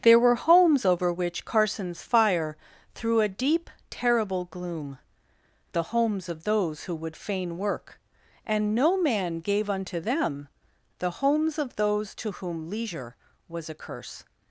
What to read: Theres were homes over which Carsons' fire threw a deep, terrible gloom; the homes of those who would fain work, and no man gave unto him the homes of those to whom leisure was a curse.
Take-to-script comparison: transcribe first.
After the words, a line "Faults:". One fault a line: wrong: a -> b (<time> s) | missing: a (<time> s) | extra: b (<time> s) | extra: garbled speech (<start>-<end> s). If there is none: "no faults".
There were homes over which Carsons' fire threw a deep, terrible gloom; the homes of those who would fain work, and no man gave unto them the homes of those to whom leisure was a curse.
Faults:
wrong: Theres -> There (0.0 s)
wrong: him -> them (10.0 s)